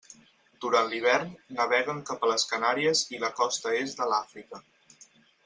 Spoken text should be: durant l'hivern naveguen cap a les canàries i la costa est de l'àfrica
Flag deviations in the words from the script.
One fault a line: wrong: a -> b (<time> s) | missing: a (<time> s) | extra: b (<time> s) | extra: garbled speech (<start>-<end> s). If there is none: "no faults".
no faults